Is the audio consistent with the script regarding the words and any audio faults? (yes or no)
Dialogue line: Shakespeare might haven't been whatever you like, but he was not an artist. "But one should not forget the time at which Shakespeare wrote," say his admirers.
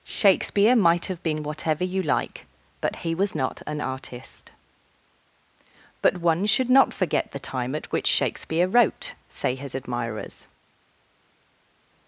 no